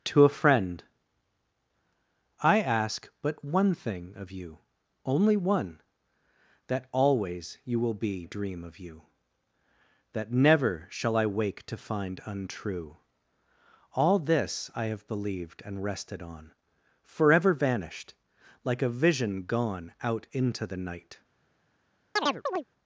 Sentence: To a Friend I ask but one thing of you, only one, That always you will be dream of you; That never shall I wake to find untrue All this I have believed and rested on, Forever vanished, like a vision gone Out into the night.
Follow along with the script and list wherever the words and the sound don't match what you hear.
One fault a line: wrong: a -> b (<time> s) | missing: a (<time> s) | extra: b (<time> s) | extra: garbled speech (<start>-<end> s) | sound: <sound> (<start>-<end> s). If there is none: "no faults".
sound: chirp (22.2-22.6 s)